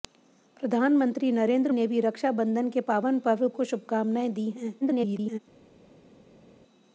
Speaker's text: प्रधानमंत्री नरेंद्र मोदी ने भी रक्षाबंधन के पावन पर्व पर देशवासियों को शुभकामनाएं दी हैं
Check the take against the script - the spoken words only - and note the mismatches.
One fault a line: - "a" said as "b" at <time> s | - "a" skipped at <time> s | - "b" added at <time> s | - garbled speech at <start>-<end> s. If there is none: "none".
- "मोदी" skipped at 1.7 s
- "पर देशवासियों" skipped at 3.5 s
- garbled speech at 4.8-5.4 s